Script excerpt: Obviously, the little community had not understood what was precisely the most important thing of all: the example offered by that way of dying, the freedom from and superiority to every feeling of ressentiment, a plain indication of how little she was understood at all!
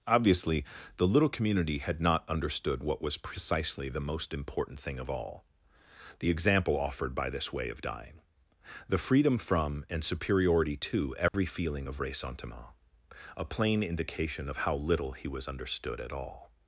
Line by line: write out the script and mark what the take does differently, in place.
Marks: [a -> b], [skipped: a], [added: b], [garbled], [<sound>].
Obviously, the little community had not understood what was precisely the most important thing of all: the example offered by [that -> this] way of dying, the freedom from and superiority to every [dropout] feeling of ressentiment, a plain indication of how little [she -> he] was understood at all!